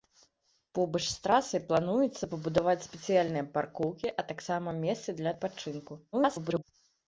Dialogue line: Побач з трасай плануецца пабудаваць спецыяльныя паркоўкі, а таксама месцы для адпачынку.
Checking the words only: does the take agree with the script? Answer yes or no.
no